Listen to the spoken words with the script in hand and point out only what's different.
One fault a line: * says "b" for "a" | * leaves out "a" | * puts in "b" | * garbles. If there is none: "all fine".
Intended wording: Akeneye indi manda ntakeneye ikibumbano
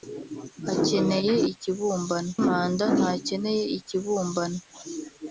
* says "ikibumbano" for "indi"